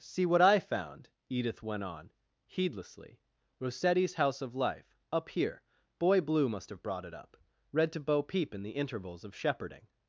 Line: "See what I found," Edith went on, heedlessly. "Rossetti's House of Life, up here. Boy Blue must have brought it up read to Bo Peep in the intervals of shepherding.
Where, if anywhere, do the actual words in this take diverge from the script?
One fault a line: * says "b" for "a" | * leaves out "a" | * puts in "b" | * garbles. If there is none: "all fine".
all fine